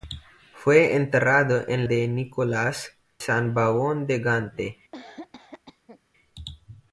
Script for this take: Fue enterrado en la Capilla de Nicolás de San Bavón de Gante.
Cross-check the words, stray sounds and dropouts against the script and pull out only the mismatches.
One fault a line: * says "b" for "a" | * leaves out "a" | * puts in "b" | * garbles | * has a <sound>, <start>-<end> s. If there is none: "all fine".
* leaves out "la Capilla"
* leaves out "de"
* has a cough, 4.9-6.0 s